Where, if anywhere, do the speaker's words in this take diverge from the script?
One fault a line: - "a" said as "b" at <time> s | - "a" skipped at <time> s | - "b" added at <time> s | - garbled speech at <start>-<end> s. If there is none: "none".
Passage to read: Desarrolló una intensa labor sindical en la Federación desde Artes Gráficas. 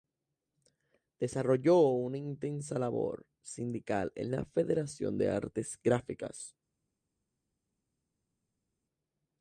- "desde" said as "de" at 5.2 s